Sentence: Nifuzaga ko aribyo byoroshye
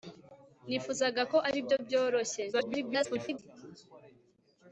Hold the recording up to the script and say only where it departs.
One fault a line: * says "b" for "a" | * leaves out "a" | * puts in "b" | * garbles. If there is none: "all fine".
* garbles